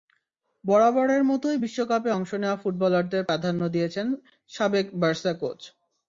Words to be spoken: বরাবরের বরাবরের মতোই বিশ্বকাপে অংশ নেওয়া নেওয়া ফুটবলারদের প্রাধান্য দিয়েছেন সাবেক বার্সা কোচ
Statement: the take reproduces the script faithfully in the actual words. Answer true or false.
false